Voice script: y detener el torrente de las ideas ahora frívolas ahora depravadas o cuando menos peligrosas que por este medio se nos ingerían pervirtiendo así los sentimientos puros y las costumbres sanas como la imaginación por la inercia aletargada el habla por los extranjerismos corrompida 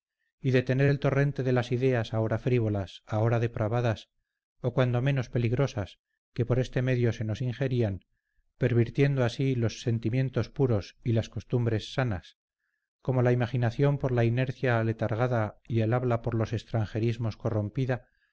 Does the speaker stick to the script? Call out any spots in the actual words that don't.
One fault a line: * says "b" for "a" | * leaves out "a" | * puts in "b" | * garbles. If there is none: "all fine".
* puts in "y"